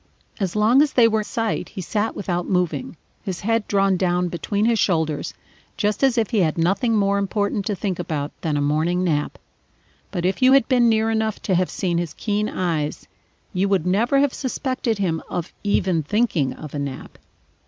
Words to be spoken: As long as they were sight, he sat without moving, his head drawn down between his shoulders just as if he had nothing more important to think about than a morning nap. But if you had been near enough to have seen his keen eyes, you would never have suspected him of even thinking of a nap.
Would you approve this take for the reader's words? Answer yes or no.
yes